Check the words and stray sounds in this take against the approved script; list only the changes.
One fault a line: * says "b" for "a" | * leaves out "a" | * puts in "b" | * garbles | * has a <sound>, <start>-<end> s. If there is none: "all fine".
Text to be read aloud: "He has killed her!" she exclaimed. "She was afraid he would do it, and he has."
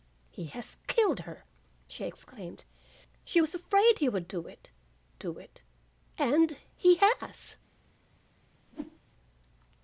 * puts in "do it"
* has a whoosh, 8.7-9.0 s